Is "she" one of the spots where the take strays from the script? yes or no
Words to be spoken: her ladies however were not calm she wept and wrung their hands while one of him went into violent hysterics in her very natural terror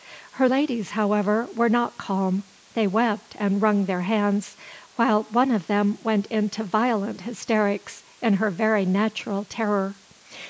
yes